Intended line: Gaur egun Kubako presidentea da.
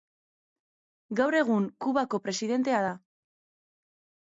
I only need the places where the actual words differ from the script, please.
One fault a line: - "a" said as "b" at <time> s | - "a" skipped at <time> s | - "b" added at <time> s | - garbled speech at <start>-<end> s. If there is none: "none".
none